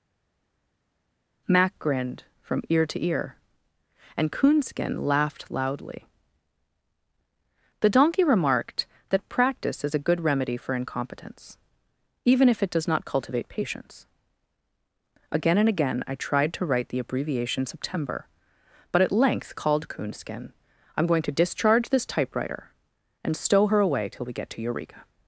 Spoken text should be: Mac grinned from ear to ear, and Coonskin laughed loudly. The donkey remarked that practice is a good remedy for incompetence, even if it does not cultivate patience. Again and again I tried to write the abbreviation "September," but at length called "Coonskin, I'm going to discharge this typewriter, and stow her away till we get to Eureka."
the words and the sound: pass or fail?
pass